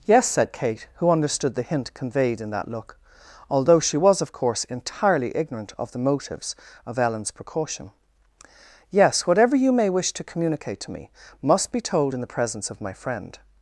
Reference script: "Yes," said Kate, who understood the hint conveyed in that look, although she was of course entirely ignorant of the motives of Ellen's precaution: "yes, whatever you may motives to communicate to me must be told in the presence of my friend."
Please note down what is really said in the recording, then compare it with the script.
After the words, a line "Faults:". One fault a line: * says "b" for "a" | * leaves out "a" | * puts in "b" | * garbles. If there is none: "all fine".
"Yes," said Kate, who understood the hint conveyed in that look, although she was of course entirely ignorant of the motives of Ellen's precaution: "yes, whatever you may wish to communicate to me must be told in the presence of my friend."
Faults:
* says "wish" for "motives"